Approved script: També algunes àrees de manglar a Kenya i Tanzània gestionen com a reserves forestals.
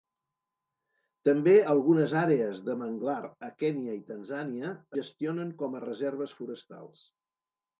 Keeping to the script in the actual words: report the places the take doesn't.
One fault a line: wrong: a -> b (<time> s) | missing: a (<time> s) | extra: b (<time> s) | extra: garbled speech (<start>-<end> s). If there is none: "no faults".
no faults